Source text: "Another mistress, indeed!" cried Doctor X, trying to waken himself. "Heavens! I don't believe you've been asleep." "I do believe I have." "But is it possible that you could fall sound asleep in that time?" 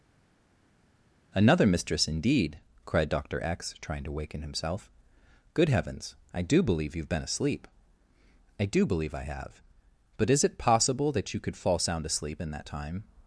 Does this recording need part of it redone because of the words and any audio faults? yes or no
yes